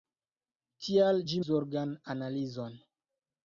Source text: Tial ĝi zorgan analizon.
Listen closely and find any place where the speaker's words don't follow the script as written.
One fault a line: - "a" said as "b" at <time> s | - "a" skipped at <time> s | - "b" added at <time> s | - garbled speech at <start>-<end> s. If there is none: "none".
none